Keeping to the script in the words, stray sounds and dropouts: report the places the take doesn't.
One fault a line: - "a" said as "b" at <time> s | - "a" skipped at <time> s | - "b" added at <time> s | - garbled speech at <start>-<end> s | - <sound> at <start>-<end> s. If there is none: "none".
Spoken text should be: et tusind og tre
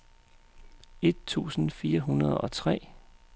- "fire hundrede" added at 1.7 s